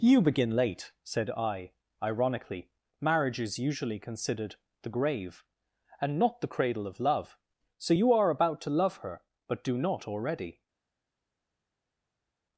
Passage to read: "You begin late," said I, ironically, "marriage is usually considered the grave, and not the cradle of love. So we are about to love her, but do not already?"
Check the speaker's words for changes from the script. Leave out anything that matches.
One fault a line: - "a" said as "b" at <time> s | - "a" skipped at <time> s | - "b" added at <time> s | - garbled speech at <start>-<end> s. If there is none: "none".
- "we" said as "you" at 7.9 s